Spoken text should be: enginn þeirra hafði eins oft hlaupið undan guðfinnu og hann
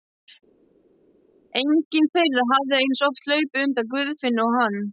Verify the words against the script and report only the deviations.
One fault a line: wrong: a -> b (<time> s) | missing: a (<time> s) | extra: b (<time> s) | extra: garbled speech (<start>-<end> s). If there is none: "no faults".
no faults